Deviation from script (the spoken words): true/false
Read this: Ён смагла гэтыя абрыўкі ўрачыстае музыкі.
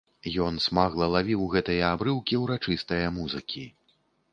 true